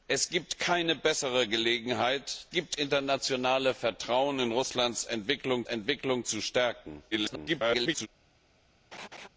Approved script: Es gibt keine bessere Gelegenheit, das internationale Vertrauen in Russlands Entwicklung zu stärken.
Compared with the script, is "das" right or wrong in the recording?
wrong